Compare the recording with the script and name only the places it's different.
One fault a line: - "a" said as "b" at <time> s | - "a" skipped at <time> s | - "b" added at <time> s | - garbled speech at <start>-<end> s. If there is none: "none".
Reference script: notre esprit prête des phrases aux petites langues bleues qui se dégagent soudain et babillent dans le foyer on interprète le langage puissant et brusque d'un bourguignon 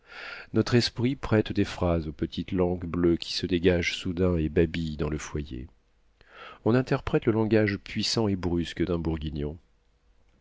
none